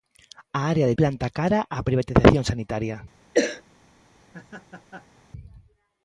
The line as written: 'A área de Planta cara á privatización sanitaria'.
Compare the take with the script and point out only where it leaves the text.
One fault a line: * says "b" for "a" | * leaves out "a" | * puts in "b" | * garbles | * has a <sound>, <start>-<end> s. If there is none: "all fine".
* has a cough, 3.3-3.6 s
* has a laugh, 4.2-5.2 s